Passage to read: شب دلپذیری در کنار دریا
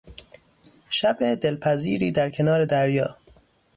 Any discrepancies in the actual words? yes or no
no